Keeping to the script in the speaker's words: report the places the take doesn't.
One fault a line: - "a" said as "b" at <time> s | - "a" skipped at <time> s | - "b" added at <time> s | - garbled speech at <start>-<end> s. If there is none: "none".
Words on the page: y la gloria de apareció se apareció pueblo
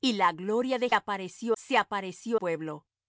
none